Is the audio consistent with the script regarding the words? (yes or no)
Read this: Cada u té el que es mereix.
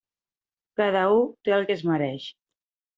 yes